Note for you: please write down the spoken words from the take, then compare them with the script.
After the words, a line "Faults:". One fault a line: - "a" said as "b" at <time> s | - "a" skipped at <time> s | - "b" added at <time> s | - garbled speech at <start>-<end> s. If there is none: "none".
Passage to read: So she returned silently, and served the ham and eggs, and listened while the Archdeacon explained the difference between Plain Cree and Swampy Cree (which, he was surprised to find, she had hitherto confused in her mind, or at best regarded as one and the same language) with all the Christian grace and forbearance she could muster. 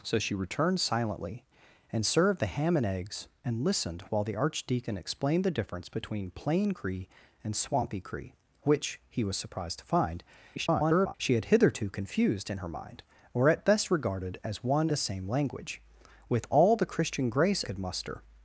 So she returned silently, and served the ham and eggs, and listened while the Archdeacon explained the difference between Plain Cree and Swampy Cree (which, he was surprised to find, [garbled] she had hitherto confused in her mind, or at best regarded as one the same language) with all the Christian grace could muster.
Faults:
- garbled speech at 10.6-11.1 s
- "and" skipped at 14.9 s
- "and forbearance she" skipped at 17.6 s